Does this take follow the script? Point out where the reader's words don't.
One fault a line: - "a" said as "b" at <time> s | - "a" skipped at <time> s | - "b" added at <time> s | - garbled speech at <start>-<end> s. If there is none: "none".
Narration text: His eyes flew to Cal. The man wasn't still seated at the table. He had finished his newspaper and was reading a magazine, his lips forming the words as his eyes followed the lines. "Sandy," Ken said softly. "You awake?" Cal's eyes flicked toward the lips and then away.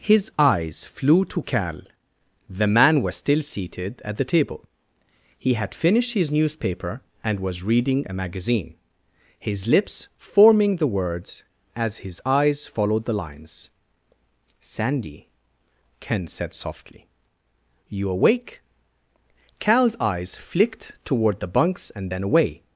- "wasn't" said as "was" at 3.0 s
- "lips" said as "bunks" at 21.5 s